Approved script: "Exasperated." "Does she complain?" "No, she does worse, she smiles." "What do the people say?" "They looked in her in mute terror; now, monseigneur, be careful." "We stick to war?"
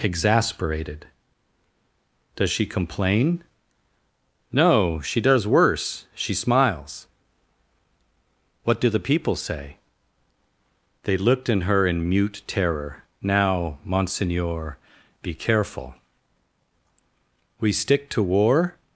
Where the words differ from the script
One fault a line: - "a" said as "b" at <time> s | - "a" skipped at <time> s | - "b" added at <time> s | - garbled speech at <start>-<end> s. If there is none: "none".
none